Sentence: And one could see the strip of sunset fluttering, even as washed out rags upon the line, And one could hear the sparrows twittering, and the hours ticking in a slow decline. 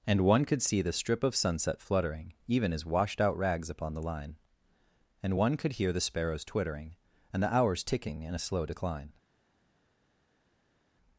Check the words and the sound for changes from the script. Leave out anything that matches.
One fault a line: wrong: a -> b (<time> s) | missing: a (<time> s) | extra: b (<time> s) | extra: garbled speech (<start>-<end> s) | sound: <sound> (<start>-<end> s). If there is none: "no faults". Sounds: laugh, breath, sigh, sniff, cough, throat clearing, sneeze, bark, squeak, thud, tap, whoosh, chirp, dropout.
no faults